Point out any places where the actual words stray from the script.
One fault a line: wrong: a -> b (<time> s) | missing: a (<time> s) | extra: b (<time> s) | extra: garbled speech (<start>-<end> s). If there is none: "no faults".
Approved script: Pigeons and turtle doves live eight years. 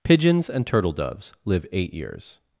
no faults